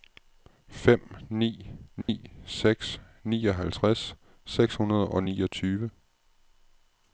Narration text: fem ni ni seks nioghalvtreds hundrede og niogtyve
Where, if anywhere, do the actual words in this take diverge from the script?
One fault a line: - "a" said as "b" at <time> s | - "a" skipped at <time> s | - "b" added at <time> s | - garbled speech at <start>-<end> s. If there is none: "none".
- "seks" added at 4.4 s